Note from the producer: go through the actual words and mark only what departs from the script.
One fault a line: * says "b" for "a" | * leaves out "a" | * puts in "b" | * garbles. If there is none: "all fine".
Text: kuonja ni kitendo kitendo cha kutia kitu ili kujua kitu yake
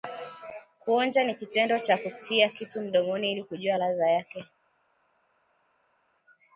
* leaves out "kitendo"
* puts in "mdomoni"
* says "ladha" for "kitu"